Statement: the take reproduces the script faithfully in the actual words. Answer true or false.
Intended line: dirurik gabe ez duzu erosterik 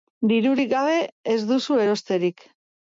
true